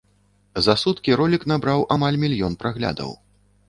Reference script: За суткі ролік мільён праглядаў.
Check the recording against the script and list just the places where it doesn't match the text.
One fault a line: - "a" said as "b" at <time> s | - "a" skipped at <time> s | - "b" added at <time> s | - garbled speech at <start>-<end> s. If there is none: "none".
- "набраў амаль" added at 1.5 s